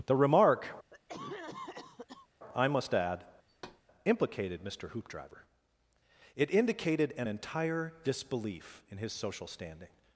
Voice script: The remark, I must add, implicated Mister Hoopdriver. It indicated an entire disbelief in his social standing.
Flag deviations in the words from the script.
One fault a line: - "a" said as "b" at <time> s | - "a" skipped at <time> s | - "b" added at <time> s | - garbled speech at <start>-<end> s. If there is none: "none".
none